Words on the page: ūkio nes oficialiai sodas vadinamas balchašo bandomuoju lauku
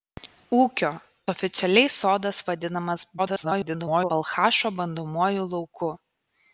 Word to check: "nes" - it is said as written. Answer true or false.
false